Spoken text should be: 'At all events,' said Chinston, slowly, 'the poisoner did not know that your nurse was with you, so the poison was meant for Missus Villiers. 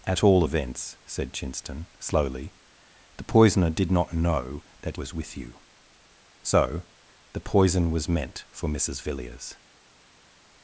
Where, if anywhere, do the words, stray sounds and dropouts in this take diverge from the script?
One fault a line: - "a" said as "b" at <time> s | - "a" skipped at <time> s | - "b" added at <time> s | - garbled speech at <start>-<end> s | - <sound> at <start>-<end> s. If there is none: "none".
- "your nurse" skipped at 5.0 s